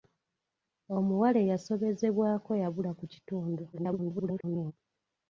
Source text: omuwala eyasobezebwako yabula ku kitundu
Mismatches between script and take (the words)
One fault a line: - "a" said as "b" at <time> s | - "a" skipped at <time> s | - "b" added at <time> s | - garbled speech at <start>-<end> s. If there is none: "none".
- garbled speech at 3.7-4.7 s